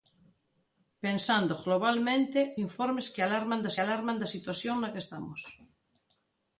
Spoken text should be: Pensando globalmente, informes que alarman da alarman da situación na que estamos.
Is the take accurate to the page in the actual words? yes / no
yes